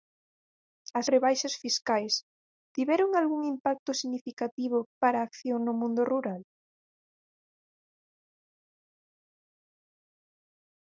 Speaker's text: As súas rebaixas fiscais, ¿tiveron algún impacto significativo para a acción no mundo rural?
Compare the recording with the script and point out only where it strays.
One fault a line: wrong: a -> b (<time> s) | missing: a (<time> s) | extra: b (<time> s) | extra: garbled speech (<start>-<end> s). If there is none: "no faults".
missing: súas (1.1 s)